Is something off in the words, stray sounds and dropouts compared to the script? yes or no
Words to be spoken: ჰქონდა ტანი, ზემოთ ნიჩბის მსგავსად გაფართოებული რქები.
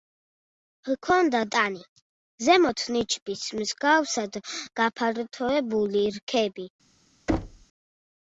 yes